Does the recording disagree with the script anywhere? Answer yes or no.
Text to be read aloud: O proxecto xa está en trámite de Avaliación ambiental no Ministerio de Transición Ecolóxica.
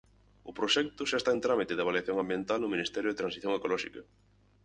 no